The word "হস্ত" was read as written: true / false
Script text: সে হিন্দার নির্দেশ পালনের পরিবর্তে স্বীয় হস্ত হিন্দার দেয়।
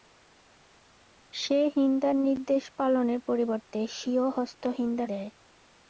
true